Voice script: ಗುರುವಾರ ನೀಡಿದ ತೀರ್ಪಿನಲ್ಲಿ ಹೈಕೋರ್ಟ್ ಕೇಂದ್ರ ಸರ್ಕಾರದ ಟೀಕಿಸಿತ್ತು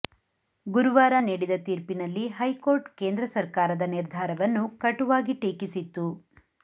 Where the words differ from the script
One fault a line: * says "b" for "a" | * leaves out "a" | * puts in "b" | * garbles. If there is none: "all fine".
* puts in "ನಿರ್ಧಾರವನ್ನು ಕಟುವಾಗಿ"